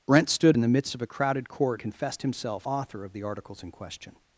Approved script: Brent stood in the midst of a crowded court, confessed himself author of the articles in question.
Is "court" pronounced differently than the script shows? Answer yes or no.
no